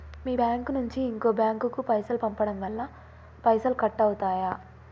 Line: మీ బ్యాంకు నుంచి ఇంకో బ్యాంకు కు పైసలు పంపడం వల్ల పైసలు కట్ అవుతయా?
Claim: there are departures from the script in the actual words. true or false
false